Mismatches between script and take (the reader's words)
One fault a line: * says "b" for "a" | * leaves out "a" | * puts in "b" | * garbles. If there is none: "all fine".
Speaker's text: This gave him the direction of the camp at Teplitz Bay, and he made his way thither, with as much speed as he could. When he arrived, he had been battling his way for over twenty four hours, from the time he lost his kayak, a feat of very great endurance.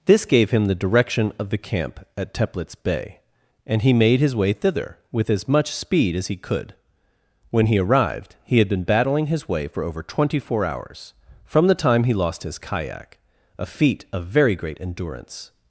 all fine